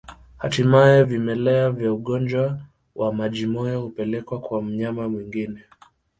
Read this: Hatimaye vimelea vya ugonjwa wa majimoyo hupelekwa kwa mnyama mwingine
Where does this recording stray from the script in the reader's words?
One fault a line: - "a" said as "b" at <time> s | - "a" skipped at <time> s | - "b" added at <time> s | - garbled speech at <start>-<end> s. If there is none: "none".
none